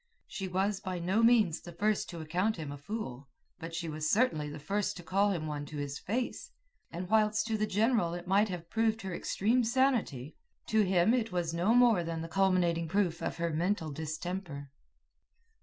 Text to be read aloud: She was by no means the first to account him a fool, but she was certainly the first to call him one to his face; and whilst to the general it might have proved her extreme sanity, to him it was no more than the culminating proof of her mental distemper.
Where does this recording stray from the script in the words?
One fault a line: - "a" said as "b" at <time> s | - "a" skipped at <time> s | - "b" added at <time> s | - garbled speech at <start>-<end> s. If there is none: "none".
none